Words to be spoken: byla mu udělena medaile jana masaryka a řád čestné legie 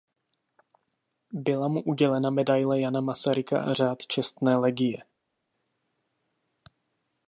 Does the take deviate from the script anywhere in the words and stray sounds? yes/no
no